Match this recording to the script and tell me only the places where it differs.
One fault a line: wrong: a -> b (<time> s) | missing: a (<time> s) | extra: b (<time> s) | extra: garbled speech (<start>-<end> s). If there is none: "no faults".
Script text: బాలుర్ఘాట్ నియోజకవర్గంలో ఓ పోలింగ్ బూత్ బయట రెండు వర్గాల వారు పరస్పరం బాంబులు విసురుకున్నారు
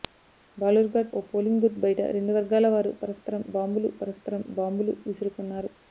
missing: నియోజకవర్గంలో (1.1 s)
extra: పరస్పరం బాంబులు (4.0 s)